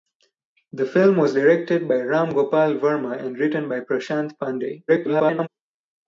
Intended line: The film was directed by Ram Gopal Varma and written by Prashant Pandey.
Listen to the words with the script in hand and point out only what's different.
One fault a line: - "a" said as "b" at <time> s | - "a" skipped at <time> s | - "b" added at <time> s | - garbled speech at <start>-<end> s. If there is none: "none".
- garbled speech at 4.9-5.5 s